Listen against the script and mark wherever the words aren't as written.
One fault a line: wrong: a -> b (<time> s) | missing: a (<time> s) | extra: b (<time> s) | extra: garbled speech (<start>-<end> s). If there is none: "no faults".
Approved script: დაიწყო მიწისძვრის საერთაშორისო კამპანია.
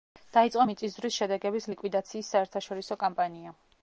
extra: შედეგების ლიკვიდაციის (1.2 s)